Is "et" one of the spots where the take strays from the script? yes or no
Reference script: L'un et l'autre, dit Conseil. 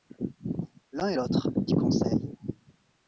no